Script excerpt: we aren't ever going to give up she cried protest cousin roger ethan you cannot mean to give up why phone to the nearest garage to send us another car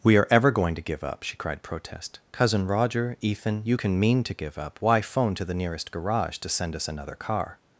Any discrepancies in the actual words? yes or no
yes